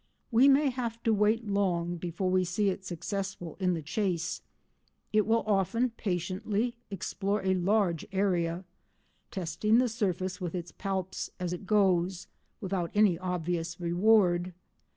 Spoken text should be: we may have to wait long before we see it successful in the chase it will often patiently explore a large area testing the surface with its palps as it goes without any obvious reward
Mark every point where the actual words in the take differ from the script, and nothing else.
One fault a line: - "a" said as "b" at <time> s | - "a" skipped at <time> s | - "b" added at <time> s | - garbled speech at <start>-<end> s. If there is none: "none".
none